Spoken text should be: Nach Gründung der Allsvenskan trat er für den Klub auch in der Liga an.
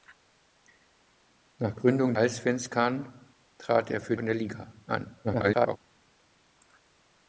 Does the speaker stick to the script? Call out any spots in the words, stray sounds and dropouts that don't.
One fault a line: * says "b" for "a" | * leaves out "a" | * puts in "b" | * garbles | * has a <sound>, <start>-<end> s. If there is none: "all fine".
* leaves out "der"
* leaves out "den Klub auch"
* garbles